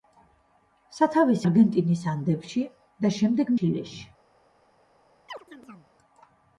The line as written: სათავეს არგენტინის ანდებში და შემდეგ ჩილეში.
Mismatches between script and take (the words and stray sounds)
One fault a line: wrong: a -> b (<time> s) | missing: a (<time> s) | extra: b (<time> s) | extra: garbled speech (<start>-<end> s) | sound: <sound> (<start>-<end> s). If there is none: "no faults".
sound: chirp (5.3-5.9 s)